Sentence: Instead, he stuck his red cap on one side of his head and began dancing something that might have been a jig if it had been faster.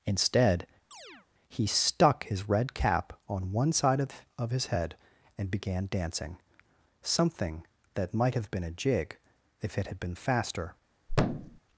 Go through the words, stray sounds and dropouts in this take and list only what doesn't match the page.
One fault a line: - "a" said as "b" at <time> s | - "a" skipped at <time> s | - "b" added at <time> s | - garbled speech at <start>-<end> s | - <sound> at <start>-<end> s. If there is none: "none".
- chirp at 0.9-1.3 s
- "of" added at 4.4 s
- thud at 11.1-11.6 s